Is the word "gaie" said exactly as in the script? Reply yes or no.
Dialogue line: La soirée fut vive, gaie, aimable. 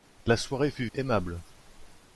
no